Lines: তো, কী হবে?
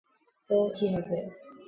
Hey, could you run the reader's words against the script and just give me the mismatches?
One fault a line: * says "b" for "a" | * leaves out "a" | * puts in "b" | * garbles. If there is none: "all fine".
all fine